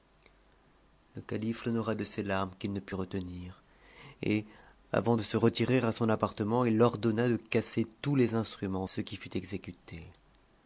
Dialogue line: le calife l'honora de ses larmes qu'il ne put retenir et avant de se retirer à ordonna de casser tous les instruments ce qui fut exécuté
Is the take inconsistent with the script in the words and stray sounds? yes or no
yes